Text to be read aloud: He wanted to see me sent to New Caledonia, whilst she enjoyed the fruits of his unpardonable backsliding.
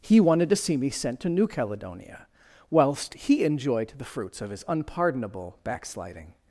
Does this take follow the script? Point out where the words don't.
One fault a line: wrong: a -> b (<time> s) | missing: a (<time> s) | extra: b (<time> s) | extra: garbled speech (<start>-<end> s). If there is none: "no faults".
wrong: she -> he (3.1 s)